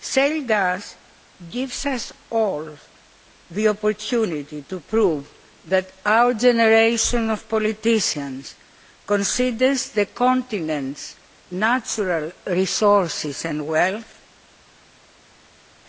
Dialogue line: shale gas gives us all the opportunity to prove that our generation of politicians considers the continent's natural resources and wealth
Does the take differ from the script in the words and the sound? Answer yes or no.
no